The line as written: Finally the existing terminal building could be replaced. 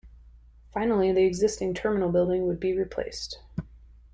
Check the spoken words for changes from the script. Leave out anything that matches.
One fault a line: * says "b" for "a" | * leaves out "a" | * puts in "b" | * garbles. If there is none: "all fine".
* says "would" for "could"